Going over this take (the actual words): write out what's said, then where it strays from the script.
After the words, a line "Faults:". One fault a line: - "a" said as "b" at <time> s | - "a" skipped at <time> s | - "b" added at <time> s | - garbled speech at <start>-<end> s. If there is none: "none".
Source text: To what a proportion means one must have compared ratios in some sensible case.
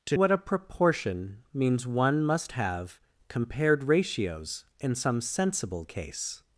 To what a proportion means one must have compared ratios in some sensible case.
Faults:
none